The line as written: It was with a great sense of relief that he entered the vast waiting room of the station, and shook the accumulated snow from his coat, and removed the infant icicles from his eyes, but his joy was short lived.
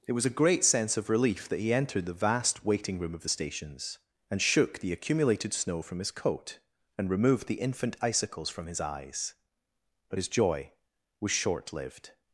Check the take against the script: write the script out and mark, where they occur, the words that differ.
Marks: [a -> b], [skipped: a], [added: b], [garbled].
It was [skipped: with] a great sense of relief that he entered the vast waiting room of the [station, -> stations] and shook the accumulated snow from his coat, and removed the infant icicles from his eyes, but his joy was short lived.